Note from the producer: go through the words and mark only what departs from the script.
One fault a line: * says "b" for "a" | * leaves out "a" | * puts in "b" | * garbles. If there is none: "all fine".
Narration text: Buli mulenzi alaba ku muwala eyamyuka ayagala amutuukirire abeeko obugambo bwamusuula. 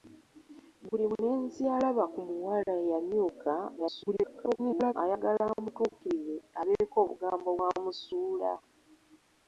* garbles